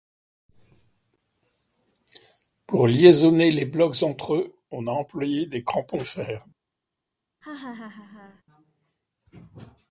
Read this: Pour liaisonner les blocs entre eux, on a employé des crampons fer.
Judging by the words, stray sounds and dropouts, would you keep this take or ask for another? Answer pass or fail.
fail